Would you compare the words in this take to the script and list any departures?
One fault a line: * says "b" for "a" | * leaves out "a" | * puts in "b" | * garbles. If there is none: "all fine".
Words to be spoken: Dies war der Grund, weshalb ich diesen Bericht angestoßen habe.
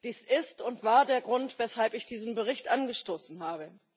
* puts in "ist und"